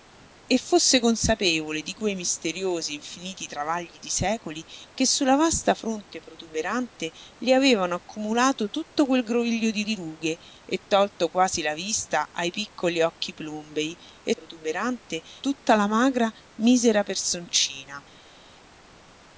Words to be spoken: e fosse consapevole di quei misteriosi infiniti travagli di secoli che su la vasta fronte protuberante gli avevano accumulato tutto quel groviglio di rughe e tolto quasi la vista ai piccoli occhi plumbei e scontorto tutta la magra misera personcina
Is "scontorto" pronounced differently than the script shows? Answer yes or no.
yes